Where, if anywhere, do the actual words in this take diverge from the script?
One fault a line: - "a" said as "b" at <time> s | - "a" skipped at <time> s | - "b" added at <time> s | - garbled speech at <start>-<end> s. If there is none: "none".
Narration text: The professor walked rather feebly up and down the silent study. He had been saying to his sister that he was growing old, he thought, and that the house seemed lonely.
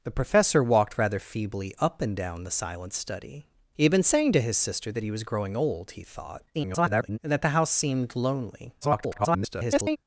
- garbled speech at 6.5-7.2 s
- garbled speech at 8.8-10.0 s